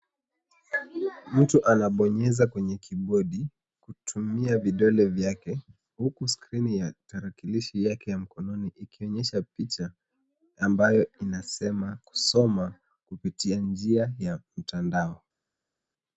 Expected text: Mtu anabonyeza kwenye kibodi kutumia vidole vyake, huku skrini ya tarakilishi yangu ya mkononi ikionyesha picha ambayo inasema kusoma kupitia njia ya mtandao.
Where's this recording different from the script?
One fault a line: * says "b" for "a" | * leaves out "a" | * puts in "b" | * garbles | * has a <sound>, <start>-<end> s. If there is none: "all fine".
* says "yake" for "yangu"